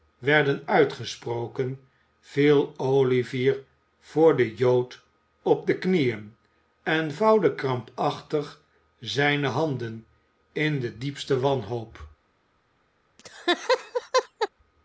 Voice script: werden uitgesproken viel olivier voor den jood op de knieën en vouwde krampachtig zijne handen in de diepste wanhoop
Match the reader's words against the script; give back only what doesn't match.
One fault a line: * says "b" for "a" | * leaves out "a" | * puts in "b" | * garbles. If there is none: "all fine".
all fine